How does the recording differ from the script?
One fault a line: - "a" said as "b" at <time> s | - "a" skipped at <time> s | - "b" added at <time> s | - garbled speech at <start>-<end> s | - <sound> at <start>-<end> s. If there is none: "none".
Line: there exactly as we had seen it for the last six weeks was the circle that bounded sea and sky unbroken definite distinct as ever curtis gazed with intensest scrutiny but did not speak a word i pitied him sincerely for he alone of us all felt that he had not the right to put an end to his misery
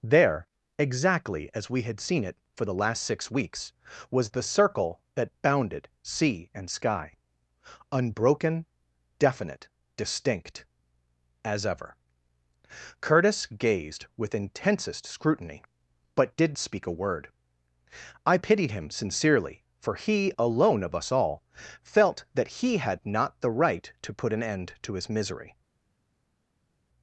- "not" skipped at 16.6 s